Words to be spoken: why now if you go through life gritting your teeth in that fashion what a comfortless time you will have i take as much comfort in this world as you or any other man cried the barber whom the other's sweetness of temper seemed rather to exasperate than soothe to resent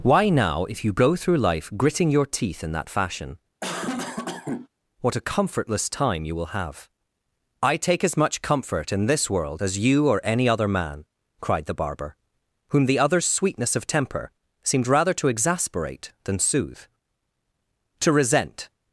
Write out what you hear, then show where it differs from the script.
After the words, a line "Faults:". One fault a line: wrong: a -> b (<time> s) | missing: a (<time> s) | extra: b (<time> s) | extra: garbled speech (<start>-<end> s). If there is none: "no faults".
why now if you go through life gritting your teeth in that fashion what a comfortless time you will have i take as much comfort in this world as you or any other man cried the barber whom the other's sweetness of temper seemed rather to exasperate than soothe to resent
Faults:
no faults